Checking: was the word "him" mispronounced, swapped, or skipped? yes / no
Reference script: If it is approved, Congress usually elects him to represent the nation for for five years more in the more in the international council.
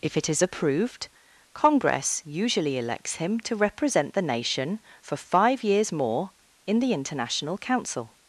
no